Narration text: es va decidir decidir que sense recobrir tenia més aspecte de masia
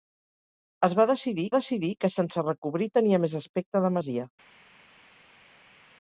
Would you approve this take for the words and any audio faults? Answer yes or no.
yes